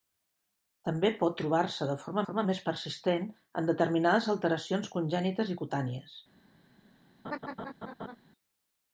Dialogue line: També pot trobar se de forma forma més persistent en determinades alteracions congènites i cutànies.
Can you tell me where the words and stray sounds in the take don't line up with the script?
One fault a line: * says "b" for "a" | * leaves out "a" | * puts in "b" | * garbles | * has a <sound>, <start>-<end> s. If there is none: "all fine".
* has a laugh, 7.2-8.2 s